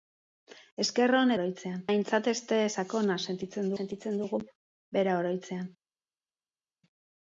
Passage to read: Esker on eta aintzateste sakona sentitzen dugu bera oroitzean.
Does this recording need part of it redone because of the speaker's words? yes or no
yes